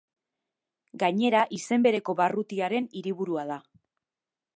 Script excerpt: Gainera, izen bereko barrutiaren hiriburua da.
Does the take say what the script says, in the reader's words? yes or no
yes